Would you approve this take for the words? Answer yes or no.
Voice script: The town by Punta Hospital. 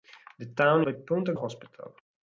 yes